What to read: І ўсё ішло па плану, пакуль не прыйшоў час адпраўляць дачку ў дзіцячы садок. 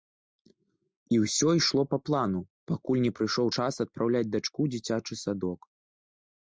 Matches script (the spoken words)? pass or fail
pass